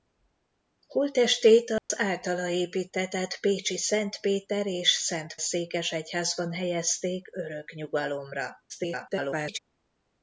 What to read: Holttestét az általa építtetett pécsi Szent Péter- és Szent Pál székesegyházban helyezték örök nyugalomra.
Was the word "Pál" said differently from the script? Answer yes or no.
yes